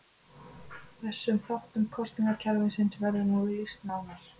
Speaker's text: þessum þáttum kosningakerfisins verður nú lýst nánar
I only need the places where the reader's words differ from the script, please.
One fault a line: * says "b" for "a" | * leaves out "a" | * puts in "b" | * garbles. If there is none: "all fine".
all fine